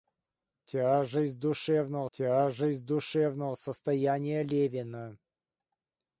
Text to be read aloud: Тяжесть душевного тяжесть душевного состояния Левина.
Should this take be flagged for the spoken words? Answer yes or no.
no